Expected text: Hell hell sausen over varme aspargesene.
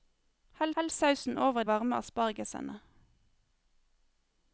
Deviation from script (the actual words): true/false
false